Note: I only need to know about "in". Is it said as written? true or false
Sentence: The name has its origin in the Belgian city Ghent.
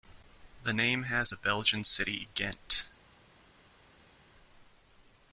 false